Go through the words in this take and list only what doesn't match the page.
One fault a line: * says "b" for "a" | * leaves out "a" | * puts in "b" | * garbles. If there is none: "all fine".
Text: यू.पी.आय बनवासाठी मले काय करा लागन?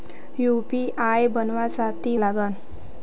* leaves out "मले काय करा"